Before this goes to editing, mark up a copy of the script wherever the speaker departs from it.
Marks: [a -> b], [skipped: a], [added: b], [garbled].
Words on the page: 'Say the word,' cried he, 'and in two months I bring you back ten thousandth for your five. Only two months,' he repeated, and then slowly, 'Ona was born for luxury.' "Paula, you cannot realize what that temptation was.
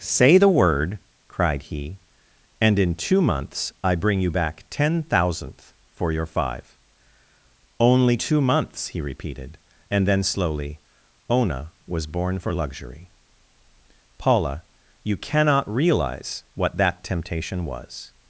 'Say the word,' cried he, 'and in two months I bring you back ten thousandth for your five. Only two months,' he repeated, and then slowly, 'Ona was born for luxury.' "Paula, you cannot realize what that temptation was.